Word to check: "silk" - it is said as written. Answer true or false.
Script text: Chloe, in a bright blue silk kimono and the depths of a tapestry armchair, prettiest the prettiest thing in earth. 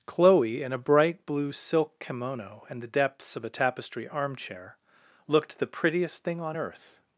true